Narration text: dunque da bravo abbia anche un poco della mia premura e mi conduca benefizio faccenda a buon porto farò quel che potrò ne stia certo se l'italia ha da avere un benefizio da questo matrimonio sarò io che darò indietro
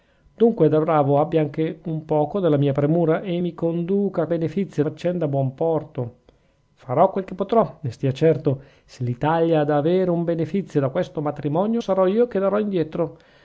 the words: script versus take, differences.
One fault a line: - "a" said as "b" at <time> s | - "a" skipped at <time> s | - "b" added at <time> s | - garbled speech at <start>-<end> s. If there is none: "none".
none